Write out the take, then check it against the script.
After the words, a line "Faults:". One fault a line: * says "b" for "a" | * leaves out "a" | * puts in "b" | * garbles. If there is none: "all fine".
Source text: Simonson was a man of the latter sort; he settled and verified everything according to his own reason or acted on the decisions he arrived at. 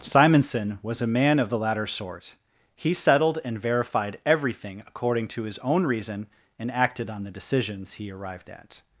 Simonson was a man of the latter sort; he settled and verified everything according to his own reason and acted on the decisions he arrived at.
Faults:
* says "and" for "or"